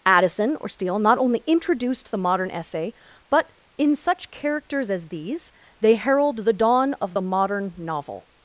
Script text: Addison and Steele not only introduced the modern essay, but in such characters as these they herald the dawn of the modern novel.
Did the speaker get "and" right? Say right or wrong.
wrong